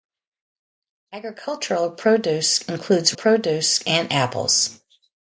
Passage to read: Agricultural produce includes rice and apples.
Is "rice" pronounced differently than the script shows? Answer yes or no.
yes